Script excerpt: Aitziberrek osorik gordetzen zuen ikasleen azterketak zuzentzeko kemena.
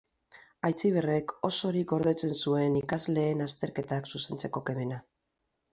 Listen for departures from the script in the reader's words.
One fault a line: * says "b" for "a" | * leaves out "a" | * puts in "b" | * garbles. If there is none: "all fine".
all fine